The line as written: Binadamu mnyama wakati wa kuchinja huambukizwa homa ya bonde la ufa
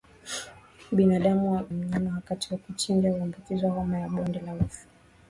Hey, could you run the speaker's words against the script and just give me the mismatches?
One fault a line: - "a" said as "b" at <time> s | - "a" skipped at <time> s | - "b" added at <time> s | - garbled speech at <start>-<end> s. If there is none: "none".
none